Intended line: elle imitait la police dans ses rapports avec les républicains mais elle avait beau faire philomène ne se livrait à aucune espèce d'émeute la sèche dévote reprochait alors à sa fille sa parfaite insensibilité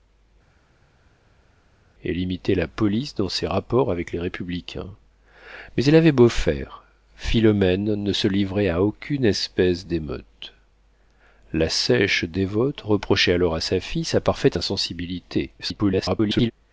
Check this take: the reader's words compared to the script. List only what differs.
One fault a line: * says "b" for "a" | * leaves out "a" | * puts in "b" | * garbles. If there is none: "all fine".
* garbles